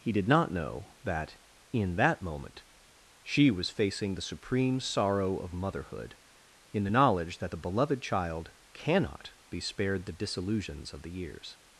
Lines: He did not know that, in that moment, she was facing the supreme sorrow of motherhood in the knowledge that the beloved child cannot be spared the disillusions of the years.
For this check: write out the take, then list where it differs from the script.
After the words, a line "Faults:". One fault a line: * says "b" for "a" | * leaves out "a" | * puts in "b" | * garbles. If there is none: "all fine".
He did not know that, in that moment, she was facing the supreme sorrow of motherhood in the knowledge that the beloved child cannot be spared the disillusions of the years.
Faults:
all fine